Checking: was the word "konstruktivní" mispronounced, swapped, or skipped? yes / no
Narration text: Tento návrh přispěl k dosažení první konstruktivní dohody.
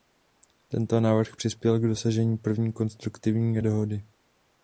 no